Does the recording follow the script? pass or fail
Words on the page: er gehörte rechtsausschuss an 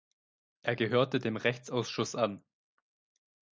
fail